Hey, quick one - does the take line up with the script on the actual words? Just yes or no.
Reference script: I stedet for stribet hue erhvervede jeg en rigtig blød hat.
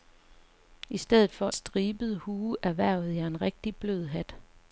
yes